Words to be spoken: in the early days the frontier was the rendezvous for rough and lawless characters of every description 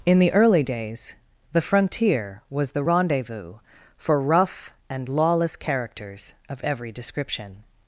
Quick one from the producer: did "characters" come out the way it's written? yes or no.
yes